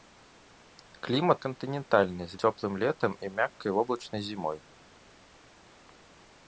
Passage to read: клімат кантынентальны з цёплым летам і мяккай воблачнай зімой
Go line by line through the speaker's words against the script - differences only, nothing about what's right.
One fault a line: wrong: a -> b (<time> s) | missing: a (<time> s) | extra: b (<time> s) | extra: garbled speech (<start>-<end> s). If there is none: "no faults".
no faults